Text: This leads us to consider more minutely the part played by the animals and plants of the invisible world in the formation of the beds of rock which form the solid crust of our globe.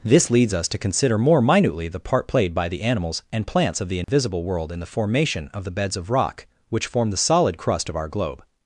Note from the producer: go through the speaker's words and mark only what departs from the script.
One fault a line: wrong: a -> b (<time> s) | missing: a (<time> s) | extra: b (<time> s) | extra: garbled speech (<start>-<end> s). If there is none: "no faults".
no faults